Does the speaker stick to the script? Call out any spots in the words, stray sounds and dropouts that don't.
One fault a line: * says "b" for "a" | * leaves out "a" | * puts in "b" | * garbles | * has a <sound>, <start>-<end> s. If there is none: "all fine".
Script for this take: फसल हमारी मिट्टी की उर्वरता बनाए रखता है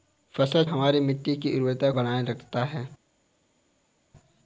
all fine